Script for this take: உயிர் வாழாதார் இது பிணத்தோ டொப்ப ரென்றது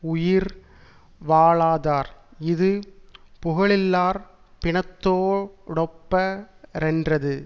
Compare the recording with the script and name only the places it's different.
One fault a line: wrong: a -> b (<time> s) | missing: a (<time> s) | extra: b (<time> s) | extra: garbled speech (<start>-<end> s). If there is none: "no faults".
extra: புகழில்லார் (3.4 s)